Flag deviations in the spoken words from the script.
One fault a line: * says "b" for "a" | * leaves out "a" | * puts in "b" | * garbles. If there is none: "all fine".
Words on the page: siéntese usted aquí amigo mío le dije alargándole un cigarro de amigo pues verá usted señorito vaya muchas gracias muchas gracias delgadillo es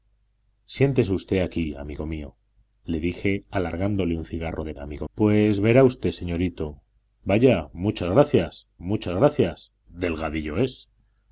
all fine